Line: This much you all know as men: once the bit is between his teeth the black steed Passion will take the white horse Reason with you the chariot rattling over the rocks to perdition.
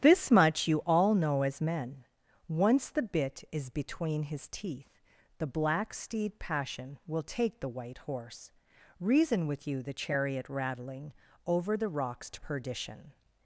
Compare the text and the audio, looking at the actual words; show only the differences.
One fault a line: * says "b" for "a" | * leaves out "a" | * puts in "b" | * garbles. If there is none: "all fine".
all fine